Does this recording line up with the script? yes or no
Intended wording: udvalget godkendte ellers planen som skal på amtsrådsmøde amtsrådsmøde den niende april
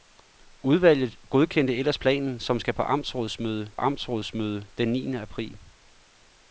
yes